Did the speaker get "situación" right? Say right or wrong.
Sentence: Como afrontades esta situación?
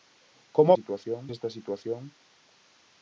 right